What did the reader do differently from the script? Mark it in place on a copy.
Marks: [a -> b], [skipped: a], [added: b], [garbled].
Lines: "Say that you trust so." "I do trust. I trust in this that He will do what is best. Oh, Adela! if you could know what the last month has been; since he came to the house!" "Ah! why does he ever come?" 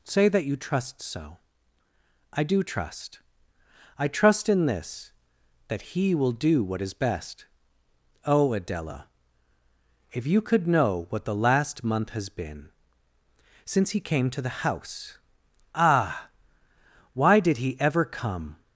"Say that you trust so." "I do trust. I trust in this that He will do what is best. Oh, Adela! if you could know what the last month has been; since he came to the house!" "Ah! why [does -> did] he ever come?"